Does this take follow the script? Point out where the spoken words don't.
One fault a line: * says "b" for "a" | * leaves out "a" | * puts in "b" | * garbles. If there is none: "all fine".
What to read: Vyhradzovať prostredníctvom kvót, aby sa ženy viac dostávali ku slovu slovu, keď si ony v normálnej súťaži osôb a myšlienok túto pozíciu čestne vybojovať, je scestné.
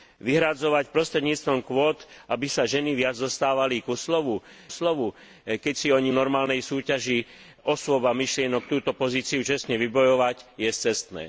all fine